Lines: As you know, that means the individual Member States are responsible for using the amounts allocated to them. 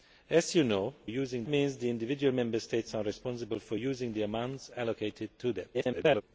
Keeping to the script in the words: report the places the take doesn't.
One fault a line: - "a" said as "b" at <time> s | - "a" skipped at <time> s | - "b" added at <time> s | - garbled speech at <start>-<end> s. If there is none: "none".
- "that" said as "using" at 1.0 s
- garbled speech at 5.7-6.2 s